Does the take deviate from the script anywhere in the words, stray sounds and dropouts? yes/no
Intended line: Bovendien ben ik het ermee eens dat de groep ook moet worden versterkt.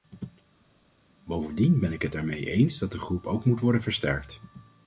no